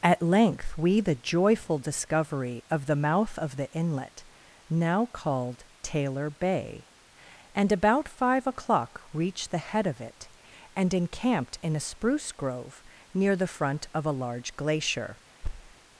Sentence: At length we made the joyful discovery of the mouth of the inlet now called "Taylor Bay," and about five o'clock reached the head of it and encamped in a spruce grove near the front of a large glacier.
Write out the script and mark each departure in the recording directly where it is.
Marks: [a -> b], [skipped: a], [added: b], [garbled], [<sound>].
At length we [skipped: made] the joyful discovery of the mouth of the inlet now called "Taylor Bay," and about five o'clock reached the head of it and encamped in a spruce grove near the front of a large glacier. [thud]